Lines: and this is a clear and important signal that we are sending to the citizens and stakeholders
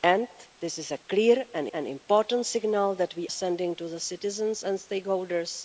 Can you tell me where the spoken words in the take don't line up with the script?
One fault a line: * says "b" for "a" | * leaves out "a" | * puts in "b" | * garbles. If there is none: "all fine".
* puts in "and"
* leaves out "are"